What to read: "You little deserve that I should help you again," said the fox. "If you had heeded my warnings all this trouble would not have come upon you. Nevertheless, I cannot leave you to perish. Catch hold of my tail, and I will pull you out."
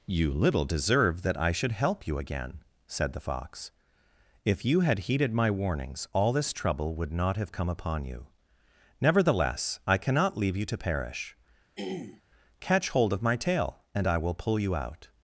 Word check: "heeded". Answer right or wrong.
right